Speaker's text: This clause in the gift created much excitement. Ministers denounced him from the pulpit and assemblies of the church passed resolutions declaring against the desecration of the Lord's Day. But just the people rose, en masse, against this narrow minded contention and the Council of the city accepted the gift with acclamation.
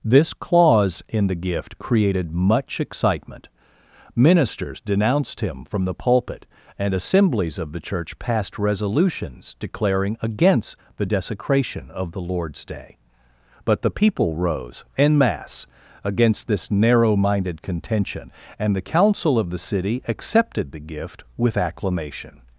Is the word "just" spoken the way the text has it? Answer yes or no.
no